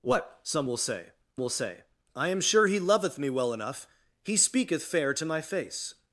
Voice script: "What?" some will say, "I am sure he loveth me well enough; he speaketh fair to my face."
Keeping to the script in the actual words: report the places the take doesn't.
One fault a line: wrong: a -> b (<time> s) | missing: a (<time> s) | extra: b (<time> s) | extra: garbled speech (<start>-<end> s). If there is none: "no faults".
extra: will say (1.4 s)